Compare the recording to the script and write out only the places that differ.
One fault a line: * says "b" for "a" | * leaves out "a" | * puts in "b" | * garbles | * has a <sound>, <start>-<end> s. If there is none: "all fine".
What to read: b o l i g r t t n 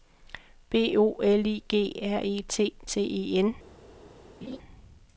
* puts in "e"
* puts in "e"
* has a laugh, 4.4-4.6 s